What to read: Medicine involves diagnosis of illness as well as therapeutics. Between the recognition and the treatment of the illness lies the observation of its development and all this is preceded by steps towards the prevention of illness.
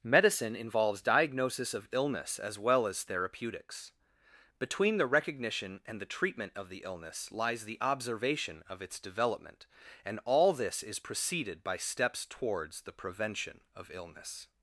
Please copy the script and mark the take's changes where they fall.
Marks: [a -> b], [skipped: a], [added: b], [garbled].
Medicine involves diagnosis of illness as well as therapeutics. Between the recognition and the treatment of the illness lies the observation of its development and all this is preceded by steps towards the prevention of illness.